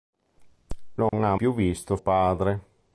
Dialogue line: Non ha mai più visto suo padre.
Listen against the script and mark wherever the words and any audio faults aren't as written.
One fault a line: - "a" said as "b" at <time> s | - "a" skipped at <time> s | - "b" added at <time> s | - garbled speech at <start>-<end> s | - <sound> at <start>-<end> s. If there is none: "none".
- dropout at 1.1-1.1 s
- "mai" skipped at 1.4 s
- "suo" skipped at 2.0 s